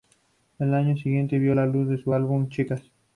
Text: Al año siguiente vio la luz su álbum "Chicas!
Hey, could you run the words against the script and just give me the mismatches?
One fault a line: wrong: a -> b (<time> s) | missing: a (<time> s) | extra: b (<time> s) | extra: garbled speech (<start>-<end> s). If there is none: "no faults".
no faults